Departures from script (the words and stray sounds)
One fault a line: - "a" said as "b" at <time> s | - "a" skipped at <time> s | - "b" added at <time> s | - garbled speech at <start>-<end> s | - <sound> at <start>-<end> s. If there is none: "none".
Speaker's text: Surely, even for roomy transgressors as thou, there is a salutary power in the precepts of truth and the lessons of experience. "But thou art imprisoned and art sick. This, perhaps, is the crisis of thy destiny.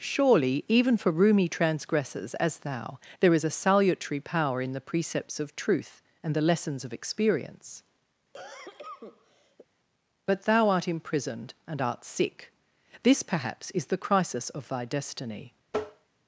- cough at 8.3-9.7 s
- tap at 15.7-16.1 s